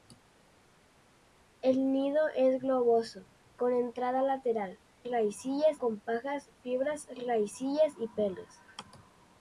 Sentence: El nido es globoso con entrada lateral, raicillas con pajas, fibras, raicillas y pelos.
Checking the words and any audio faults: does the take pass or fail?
pass